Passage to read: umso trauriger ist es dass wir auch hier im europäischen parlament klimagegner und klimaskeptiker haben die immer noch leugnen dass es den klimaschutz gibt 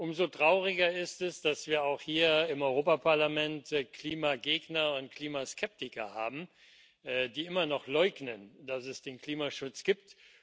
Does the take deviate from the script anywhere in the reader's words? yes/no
no